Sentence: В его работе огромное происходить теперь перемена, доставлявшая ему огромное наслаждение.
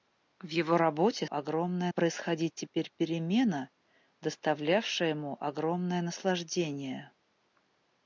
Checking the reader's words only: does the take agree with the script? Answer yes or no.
yes